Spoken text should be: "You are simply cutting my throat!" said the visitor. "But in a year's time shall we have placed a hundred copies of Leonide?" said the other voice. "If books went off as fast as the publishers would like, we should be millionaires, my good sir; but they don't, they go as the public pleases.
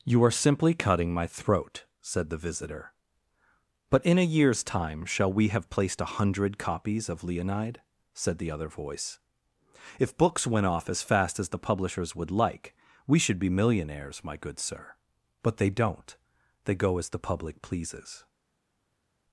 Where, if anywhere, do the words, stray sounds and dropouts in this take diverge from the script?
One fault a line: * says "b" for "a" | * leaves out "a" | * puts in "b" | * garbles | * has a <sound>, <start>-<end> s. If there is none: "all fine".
all fine